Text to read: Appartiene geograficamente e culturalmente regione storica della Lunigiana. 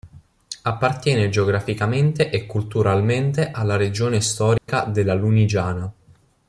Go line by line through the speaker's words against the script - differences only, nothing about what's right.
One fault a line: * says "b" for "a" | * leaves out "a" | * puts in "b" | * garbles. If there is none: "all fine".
* puts in "alla"